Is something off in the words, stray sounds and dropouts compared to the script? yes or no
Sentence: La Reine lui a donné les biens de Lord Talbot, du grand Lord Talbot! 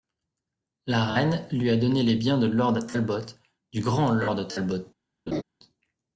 yes